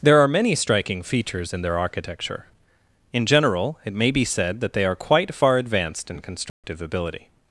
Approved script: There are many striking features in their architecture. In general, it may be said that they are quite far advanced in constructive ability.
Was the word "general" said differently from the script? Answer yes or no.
no